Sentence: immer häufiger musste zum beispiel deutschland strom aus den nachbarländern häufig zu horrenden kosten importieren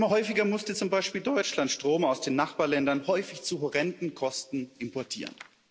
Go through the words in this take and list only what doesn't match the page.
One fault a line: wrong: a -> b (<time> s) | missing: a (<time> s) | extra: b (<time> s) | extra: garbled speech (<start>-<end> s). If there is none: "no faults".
no faults